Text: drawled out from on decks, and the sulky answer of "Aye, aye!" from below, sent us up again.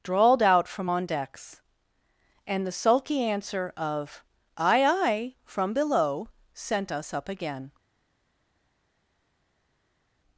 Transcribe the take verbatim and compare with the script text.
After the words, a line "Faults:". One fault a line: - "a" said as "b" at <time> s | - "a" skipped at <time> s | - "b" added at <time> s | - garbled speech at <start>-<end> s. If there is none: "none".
drawled out from on decks, and the sulky answer of "Aye, aye!" from below, sent us up again.
Faults:
none